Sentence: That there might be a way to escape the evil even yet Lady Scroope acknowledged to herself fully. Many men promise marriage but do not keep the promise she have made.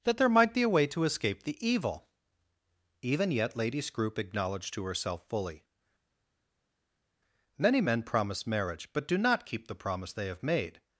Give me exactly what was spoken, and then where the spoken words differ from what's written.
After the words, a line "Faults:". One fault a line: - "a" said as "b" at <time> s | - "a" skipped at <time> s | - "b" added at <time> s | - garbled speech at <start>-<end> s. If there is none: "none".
That there might be a way to escape the evil even yet Lady Scroope acknowledged to herself fully. Many men promise marriage but do not keep the promise they have made.
Faults:
- "she" said as "they" at 10.1 s